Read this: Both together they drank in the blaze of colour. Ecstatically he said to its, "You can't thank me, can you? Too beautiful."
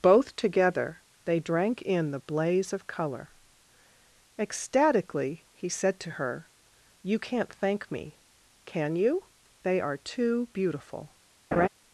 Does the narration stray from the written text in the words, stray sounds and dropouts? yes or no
yes